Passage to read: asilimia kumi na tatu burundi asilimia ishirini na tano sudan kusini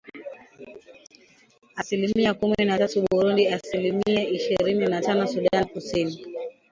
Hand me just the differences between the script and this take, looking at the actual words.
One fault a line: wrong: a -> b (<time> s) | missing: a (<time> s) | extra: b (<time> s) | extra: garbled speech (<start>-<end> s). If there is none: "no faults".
no faults